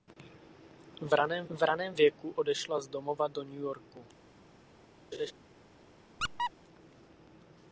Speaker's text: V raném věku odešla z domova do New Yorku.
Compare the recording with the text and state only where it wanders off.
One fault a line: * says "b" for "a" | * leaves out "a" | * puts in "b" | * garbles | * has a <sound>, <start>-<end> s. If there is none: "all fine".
* puts in "v raném"
* has a laugh, 5.1-5.3 s
* has a squeak, 6.2-6.5 s